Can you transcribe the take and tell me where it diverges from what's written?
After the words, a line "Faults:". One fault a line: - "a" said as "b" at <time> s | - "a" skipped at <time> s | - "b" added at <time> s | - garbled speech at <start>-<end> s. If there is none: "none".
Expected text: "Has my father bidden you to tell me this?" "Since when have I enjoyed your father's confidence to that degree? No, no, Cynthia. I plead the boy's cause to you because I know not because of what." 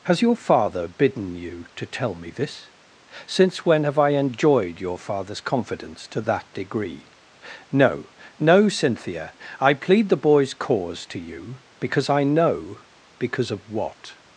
"Has your father bidden you to tell me this?" "Since when have I enjoyed your father's confidence to that degree? No, no, Cynthia. I plead the boy's cause to you because I know because of what."
Faults:
- "my" said as "your" at 0.2 s
- "not" skipped at 12.8 s